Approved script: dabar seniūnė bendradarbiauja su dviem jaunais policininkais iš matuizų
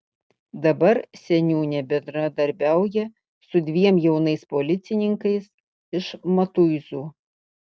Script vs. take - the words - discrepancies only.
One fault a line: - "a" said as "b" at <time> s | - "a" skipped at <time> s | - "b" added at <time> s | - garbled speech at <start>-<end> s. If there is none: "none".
none